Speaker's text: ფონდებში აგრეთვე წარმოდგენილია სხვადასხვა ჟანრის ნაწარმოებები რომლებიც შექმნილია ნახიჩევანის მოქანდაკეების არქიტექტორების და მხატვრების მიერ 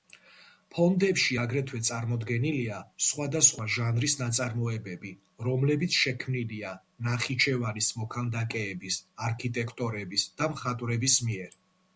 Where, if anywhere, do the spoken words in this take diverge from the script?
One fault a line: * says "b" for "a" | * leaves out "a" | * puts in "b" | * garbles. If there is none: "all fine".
all fine